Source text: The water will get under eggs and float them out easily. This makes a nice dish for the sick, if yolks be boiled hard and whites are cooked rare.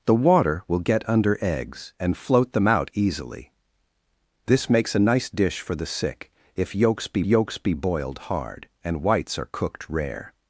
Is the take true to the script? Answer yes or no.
no